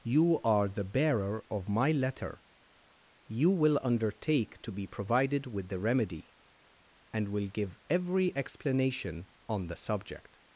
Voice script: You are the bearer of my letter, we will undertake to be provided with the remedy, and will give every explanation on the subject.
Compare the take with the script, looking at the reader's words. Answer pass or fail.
fail